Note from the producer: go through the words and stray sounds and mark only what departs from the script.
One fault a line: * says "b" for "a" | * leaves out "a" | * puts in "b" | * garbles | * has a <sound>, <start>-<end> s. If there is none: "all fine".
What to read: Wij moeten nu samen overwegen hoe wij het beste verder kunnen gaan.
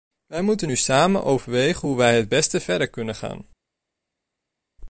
all fine